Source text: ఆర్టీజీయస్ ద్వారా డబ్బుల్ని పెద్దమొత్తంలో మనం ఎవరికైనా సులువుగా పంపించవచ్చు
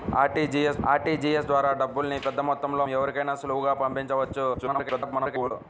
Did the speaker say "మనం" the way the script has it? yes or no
no